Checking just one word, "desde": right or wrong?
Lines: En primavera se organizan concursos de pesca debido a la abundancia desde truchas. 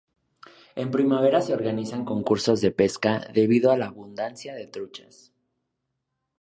wrong